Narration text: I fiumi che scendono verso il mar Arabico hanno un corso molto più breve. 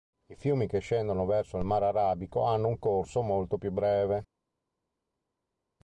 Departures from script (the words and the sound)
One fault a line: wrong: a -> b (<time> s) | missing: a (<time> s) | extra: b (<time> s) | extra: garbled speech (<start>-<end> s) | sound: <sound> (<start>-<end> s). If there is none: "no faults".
no faults